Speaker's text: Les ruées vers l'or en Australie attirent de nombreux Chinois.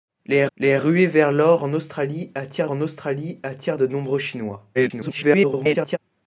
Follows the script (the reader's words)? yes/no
no